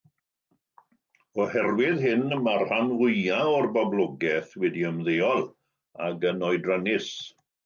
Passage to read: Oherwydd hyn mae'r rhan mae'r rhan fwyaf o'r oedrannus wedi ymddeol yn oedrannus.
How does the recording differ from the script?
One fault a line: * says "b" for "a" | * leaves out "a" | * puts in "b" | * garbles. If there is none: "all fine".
* leaves out "mae'r rhan"
* says "boblogaeth" for "oedrannus"
* puts in "ac"